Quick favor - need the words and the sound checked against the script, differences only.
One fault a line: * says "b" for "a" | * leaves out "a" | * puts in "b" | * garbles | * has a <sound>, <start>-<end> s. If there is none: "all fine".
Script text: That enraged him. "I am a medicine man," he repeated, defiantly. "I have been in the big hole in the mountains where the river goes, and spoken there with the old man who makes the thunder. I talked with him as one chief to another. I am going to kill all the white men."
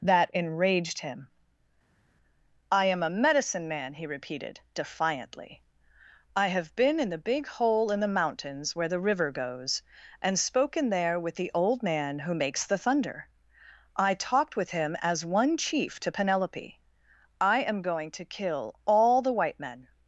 * says "penelope" for "another"